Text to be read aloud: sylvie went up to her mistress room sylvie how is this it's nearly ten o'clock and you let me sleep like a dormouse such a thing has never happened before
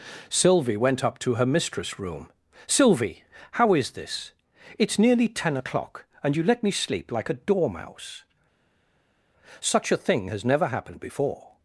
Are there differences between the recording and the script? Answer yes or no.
no